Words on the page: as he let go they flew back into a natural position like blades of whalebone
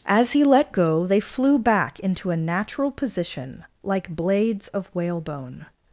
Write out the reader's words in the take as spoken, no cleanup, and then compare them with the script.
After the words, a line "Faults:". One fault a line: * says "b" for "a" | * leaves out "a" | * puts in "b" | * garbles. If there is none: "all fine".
as he let go they flew back into a natural position like blades of whalebone
Faults:
all fine